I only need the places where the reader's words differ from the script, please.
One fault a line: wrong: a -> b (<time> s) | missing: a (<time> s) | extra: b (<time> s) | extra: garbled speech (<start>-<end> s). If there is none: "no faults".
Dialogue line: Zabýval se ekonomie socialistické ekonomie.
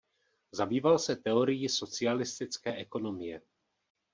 wrong: ekonomie -> teorií (1.1 s)